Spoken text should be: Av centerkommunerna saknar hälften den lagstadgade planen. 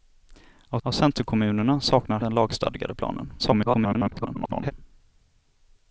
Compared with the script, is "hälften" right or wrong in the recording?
wrong